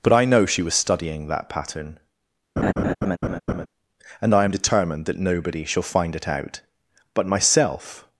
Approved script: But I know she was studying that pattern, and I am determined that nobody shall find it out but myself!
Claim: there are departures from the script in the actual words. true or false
false